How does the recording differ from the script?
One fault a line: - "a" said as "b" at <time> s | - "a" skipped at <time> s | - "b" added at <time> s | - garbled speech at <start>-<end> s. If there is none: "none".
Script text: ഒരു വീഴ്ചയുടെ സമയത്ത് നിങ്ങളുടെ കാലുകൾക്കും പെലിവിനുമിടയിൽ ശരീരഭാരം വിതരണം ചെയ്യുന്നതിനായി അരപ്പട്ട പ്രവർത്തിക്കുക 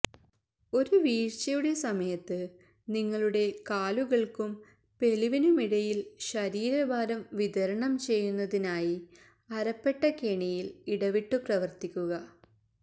- "കെണിയിൽ ഇടവിട്ടു" added at 10.2 s